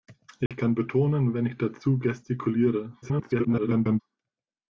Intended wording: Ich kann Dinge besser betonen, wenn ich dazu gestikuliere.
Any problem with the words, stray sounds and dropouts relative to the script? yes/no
yes